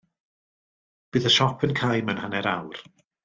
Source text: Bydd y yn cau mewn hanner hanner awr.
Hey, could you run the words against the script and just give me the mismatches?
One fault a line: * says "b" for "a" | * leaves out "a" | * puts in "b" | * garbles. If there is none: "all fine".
* puts in "siop"
* leaves out "hanner"